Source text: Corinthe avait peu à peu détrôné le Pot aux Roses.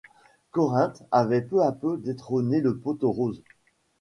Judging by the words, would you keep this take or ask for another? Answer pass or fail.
pass